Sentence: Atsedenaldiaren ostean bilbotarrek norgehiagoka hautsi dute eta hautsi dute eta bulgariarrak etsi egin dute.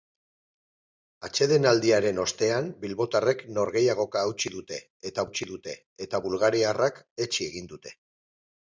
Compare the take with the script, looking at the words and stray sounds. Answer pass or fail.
pass